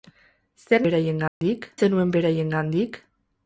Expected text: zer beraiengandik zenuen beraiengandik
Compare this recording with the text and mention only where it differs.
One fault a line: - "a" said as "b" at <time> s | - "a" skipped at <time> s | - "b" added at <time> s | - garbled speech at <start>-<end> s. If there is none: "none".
none